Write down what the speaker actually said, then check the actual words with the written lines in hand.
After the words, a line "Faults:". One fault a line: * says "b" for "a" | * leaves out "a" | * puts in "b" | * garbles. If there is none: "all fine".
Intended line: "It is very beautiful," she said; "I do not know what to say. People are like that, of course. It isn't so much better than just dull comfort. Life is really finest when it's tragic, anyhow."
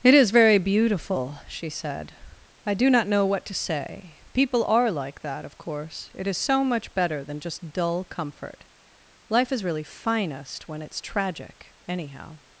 "It is very beautiful," she said; "I do not know what to say. People are like that, of course. It is so much better than just dull comfort. Life is really finest when it's tragic, anyhow."
Faults:
* says "is" for "isn't"